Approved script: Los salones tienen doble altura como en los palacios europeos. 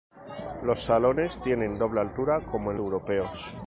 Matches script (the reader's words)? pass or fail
fail